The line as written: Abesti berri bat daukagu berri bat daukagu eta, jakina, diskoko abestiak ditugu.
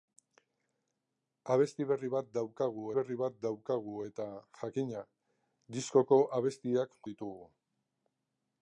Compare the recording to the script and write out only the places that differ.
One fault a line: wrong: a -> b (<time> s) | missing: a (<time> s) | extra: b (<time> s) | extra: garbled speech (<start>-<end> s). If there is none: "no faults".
no faults